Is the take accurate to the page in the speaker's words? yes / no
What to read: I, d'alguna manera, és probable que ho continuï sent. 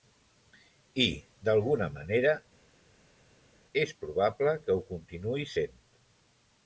yes